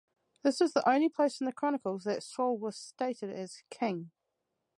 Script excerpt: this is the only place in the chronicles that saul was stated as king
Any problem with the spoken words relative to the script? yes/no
no